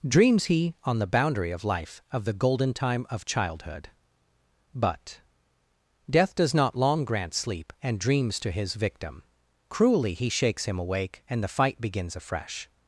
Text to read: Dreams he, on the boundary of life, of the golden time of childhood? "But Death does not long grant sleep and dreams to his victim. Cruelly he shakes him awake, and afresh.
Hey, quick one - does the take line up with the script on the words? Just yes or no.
no